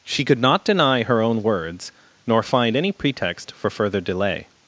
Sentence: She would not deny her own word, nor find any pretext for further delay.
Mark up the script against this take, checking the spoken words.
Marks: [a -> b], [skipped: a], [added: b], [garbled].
She [would -> could] not deny her own [word, -> words] nor find any pretext for further delay.